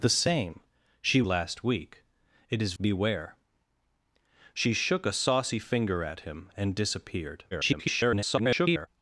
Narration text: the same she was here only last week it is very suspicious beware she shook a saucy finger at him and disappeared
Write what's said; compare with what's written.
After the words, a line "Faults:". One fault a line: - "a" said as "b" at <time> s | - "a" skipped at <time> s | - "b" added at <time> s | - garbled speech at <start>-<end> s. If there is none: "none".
the same she last week it is beware she shook a saucy finger at him and disappeared [garbled]
Faults:
- "was here only" skipped at 1.2 s
- "very suspicious" skipped at 2.7 s
- garbled speech at 7.5-8.9 s